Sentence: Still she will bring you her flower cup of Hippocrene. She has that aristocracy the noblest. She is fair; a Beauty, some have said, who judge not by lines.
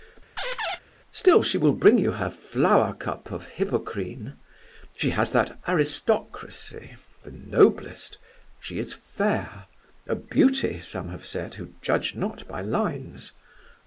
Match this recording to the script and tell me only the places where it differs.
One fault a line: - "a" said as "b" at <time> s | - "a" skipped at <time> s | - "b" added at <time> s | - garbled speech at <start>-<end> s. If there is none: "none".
none